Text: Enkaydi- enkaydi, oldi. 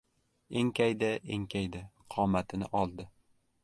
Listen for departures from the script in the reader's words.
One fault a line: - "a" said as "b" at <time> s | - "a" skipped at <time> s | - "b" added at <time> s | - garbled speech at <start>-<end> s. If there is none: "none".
- "qomatini" added at 2.2 s